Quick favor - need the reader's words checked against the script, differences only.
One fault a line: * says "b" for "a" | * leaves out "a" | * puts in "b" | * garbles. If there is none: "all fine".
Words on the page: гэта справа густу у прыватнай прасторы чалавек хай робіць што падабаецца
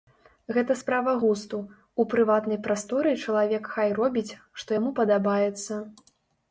* puts in "яму"